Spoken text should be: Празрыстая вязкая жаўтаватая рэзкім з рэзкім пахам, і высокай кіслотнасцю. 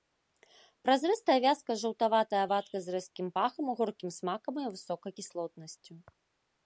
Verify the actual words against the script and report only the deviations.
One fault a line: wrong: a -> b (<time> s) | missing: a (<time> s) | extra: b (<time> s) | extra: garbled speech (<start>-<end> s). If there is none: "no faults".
wrong: рэзкім -> вадкасць (2.5 s)
extra: горкім смакам (3.8 s)